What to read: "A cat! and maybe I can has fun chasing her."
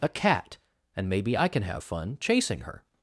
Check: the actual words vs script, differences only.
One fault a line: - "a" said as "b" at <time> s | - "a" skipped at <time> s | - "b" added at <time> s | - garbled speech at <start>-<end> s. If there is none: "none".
- "has" said as "have" at 1.6 s